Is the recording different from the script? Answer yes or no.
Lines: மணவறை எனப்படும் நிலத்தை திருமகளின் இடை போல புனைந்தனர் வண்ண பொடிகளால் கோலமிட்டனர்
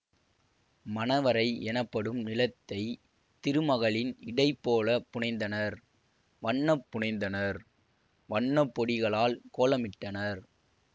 yes